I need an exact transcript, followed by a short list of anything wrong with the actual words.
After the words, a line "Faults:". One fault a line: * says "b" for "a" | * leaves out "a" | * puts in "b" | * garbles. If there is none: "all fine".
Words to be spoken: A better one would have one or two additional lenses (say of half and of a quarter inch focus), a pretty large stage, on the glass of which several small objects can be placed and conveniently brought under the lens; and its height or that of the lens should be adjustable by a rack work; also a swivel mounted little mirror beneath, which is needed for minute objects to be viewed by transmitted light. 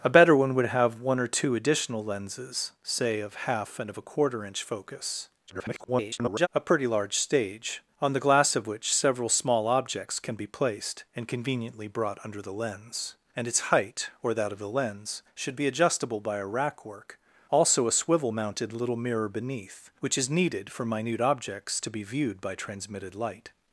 A better one would have one or two additional lenses (say of half and of a quarter inch focus), [garbled] a pretty large stage, on the glass of which several small objects can be placed and conveniently brought under the lens; and its height or that of the lens should be adjustable by a rack work; also a swivel mounted little mirror beneath, which is needed for minute objects to be viewed by transmitted light.
Faults:
* garbles